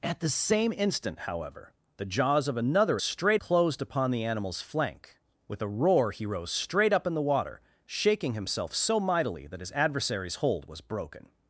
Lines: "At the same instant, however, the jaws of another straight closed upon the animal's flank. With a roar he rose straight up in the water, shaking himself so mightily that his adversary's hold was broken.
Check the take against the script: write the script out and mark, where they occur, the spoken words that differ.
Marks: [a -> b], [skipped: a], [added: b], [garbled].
"At the same instant, however, the jaws of another straight closed upon the animal's flank. With a roar he rose straight up in the water, shaking himself so mightily that his adversary's hold was broken.